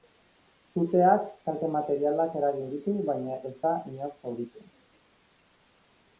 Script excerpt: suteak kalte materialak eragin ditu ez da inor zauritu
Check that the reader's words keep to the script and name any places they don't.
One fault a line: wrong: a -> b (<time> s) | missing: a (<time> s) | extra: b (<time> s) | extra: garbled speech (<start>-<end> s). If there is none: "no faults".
extra: baina (3.1 s)